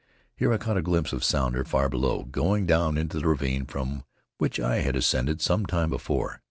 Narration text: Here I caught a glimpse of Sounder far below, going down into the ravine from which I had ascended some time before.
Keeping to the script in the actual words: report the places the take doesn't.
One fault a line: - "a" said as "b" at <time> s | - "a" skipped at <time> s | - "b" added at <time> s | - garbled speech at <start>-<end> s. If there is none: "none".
none